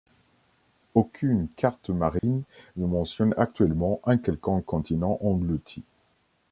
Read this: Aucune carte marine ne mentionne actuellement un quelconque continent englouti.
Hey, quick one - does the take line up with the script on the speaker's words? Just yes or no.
yes